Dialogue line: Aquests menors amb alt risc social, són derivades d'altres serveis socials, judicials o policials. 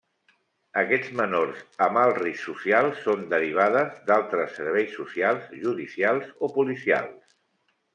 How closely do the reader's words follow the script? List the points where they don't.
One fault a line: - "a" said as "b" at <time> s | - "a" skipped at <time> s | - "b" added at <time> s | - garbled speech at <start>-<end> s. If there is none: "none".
none